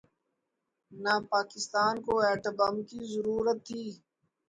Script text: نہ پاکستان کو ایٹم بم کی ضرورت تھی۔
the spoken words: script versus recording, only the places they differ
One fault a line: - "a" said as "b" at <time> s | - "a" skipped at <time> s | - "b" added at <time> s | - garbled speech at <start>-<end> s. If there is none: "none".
none